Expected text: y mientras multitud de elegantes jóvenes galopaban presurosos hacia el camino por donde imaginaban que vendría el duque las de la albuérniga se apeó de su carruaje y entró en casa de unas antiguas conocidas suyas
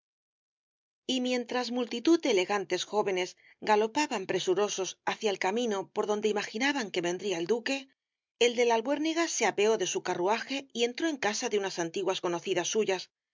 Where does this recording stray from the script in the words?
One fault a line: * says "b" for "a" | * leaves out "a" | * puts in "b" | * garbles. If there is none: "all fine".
* says "el" for "las"